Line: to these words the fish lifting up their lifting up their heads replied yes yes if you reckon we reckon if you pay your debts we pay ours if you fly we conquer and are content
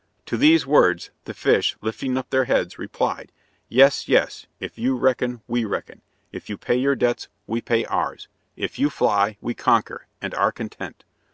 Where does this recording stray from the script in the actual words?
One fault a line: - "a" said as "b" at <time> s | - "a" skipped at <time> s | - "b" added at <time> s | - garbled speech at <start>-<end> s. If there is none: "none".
- "lifting up their" skipped at 2.5 s